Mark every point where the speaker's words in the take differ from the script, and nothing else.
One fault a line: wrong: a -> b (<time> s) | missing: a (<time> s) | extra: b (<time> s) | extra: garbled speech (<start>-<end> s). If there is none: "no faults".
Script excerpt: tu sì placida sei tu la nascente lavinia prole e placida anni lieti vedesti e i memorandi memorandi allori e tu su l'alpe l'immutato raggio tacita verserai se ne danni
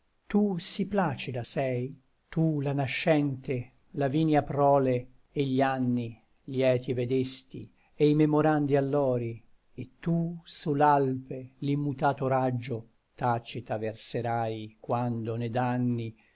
wrong: placida -> gli (5.4 s)
missing: memorandi (8.8 s)
wrong: se -> quando (14.8 s)